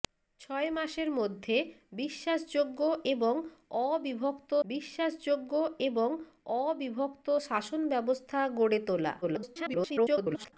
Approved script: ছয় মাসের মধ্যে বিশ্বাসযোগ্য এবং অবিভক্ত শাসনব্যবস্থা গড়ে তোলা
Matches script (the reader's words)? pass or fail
fail